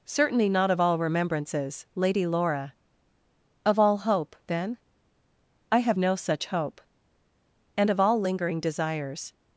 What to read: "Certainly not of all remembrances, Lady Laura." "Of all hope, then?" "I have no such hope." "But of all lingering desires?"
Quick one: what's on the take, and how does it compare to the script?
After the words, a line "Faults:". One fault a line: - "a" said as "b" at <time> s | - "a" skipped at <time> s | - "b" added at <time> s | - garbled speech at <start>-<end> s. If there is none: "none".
"Certainly not of all remembrances, Lady Laura." "Of all hope, then?" "I have no such hope." "And of all lingering desires?"
Faults:
- "But" said as "And" at 7.8 s